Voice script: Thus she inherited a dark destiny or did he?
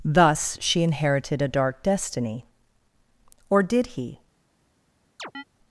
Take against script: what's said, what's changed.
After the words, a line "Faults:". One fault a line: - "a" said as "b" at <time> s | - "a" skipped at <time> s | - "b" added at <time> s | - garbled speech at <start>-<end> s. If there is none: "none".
Thus she inherited a dark destiny or did he?
Faults:
none